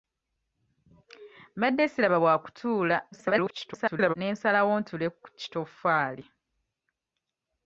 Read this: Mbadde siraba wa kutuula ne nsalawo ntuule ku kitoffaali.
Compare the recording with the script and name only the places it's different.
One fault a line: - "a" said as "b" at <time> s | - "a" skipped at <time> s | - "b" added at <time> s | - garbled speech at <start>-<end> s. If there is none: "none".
- garbled speech at 3.1-4.1 s